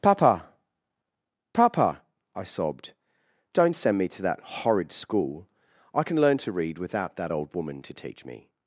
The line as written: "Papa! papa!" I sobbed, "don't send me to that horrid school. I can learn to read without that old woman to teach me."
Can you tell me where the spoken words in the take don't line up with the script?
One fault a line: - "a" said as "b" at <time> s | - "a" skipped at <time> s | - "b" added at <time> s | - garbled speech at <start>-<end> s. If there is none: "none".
none